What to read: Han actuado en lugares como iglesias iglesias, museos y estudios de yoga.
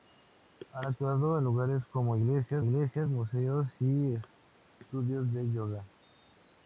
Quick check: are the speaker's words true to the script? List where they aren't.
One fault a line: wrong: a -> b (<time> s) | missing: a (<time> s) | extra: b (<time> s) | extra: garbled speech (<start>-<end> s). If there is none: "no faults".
no faults